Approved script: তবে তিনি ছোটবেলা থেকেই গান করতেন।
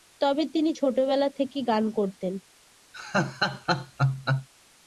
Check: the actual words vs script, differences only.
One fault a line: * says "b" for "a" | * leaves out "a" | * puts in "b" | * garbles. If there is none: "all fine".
all fine